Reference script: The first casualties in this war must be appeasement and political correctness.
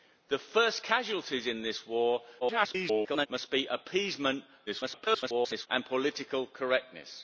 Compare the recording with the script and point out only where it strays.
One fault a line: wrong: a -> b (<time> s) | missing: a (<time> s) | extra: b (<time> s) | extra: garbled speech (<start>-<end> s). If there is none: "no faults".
extra: garbled speech (2.4-3.3 s)
extra: garbled speech (4.7-5.7 s)